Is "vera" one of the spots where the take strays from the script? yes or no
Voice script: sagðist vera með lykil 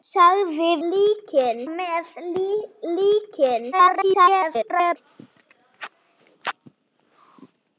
yes